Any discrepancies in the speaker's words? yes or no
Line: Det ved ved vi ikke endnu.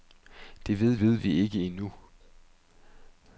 no